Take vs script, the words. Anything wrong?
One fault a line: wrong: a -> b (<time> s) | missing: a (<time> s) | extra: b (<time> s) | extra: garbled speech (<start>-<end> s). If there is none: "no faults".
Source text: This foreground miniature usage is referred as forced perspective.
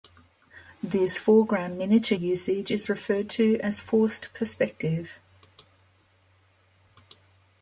extra: to (3.3 s)